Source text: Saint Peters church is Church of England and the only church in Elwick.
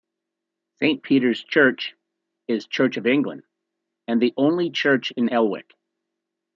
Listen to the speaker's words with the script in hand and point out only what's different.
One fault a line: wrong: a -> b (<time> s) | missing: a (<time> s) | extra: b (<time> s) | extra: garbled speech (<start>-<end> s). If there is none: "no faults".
no faults